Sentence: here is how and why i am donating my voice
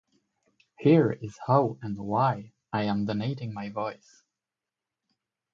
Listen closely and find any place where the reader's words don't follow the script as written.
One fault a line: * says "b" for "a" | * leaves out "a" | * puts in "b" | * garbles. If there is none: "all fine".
all fine